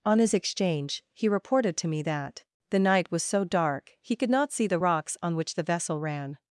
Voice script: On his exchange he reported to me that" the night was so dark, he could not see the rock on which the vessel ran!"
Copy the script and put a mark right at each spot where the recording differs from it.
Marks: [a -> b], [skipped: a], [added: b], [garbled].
On his exchange he reported to me that" the night was so dark, he could not see the [rock -> rocks] on which the vessel ran!"